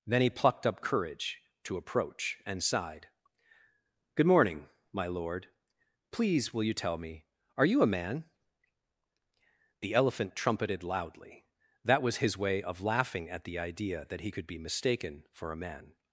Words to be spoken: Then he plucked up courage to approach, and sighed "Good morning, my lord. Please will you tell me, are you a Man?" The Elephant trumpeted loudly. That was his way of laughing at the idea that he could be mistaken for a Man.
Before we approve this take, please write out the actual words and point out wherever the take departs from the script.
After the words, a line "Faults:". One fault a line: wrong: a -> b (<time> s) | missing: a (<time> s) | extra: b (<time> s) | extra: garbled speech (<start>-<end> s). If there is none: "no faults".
Then he plucked up courage to approach, and sighed "Good morning, my lord. Please will you tell me, are you a Man?" The Elephant trumpeted loudly. That was his way of laughing at the idea that he could be mistaken for a Man.
Faults:
no faults